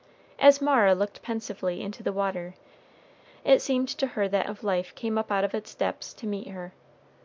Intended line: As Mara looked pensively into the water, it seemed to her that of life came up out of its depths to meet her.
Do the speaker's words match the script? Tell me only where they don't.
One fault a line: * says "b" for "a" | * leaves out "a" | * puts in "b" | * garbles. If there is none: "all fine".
all fine